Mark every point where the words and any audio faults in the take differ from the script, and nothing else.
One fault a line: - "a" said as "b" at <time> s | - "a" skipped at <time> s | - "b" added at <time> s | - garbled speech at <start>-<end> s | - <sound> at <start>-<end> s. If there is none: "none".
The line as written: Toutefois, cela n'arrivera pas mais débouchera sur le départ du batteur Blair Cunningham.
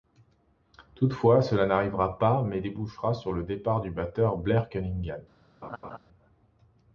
- laugh at 5.6-6.0 s